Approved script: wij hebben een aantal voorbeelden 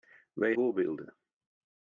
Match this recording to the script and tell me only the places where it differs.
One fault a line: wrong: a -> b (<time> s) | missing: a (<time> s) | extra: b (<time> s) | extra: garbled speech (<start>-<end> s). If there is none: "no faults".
missing: hebben een aantal (0.6 s)